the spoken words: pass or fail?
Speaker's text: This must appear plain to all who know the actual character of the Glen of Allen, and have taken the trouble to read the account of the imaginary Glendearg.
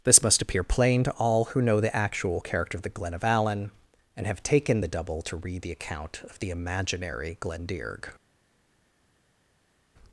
fail